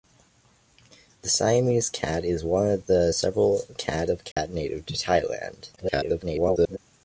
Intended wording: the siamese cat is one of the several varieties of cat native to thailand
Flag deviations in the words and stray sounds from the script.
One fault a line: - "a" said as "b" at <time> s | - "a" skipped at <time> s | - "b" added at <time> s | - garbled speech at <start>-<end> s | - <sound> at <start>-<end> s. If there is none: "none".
- "varieties" said as "cat" at 3.8 s
- dropout at 4.3-4.4 s
- garbled speech at 5.8-6.8 s